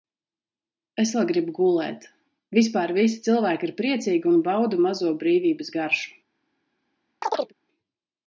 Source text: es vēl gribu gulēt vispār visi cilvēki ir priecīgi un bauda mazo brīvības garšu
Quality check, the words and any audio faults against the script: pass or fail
fail